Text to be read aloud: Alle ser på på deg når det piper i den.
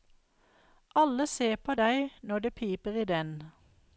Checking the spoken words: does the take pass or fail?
fail